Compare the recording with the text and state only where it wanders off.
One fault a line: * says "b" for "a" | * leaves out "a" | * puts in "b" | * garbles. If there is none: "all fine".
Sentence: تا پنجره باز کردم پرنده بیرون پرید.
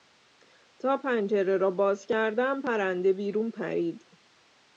* puts in "را"